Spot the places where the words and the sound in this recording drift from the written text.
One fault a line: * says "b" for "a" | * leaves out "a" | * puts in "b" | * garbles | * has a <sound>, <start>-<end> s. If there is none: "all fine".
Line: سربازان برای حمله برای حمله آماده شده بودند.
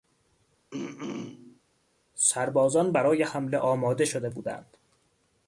* has a throat clearing, 0.7-1.6 s
* leaves out "برای حمله"